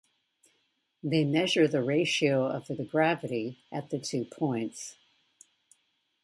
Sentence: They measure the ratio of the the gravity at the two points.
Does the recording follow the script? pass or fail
pass